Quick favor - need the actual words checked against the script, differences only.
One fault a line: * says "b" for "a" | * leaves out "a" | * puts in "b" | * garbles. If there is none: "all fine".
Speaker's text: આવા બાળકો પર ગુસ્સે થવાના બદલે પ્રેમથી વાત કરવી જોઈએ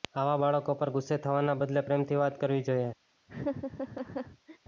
all fine